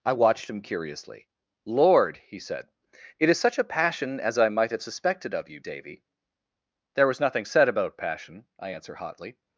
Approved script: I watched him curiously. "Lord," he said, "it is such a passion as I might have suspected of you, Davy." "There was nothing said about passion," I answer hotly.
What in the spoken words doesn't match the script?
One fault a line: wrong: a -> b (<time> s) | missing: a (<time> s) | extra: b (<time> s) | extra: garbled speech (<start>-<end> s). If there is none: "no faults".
no faults